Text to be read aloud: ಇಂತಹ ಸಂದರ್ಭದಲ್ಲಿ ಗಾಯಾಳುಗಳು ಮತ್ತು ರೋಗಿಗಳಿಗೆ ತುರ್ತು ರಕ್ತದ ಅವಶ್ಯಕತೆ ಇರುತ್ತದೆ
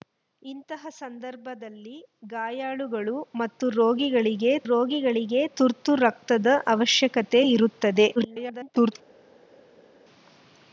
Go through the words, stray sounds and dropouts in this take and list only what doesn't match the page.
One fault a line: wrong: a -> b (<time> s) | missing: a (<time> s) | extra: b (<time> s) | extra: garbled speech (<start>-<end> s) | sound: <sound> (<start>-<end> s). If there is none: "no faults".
extra: ರೋಗಿಗಳಿಗೆ (4.6 s)
extra: garbled speech (8.2-8.9 s)